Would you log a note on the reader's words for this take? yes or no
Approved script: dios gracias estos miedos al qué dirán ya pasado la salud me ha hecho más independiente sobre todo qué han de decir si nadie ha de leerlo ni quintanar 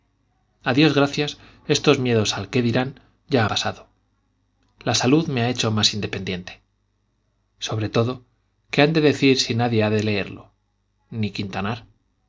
no